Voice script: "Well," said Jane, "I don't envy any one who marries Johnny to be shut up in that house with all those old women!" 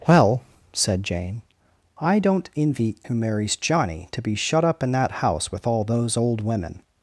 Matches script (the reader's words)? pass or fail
fail